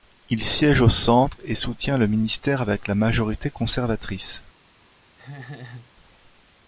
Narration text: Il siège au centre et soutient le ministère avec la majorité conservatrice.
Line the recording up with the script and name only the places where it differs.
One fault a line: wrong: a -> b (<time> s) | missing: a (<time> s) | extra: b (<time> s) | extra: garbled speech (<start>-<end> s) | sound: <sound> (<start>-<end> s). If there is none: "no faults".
sound: laugh (5.2-5.9 s)